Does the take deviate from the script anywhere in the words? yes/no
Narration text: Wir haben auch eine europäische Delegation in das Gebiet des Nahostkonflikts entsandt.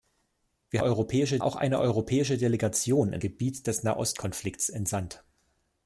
yes